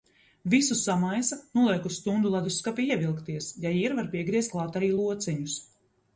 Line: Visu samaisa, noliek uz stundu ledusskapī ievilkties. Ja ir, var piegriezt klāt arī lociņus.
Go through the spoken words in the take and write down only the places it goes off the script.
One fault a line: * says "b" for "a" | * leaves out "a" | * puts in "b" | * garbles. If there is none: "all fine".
all fine